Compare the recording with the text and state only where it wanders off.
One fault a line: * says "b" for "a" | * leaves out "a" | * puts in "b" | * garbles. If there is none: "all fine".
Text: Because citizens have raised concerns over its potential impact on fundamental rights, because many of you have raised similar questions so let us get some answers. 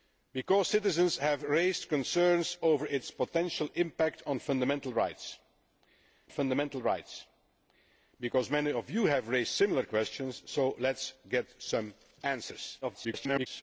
* puts in "fundamental rights"
* garbles